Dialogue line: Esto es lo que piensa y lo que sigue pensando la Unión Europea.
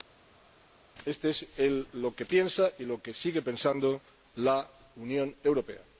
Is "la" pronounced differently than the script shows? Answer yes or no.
no